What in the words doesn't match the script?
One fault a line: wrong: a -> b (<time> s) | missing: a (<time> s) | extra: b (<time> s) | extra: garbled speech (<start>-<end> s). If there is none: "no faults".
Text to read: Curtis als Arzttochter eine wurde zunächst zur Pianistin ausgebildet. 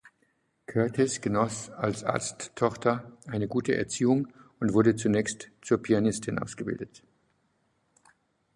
extra: genoss (1.2 s)
extra: gute Erziehung und (3.5 s)